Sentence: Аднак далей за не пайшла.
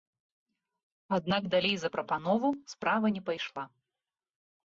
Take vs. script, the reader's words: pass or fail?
fail